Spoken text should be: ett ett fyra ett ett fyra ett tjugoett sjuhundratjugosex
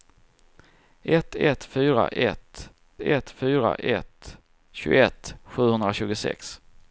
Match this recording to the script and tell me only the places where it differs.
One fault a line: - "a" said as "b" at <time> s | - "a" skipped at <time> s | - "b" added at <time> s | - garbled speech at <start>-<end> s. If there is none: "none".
none